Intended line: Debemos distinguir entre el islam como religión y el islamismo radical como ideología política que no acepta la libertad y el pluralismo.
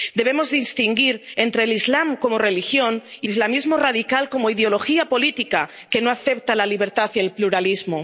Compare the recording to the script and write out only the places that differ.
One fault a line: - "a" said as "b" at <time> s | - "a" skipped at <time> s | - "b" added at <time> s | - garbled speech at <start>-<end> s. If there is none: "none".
- "el" skipped at 3.3 s